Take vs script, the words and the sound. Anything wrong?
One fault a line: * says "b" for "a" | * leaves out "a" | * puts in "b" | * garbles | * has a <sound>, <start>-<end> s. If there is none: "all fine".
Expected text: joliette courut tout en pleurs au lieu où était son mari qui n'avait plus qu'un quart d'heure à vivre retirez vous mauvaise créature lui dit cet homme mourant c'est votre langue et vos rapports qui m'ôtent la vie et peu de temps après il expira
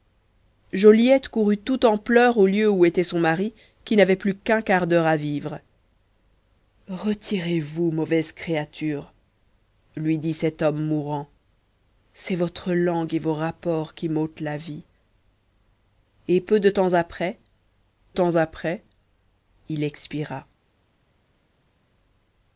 * puts in "temps après"